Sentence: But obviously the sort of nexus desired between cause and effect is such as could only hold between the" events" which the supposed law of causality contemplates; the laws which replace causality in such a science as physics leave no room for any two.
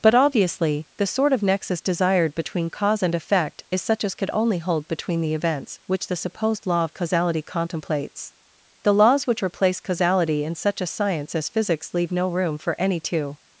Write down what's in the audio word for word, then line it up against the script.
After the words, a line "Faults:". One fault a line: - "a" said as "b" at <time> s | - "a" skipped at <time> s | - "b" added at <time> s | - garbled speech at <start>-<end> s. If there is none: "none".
But obviously the sort of nexus desired between cause and effect is such as could only hold between the" events" which the supposed law of causality contemplates; the laws which replace causality in such a science as physics leave no room for any two.
Faults:
none